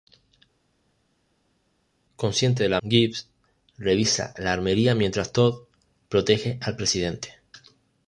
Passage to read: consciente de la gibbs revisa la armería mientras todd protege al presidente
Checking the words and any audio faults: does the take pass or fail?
pass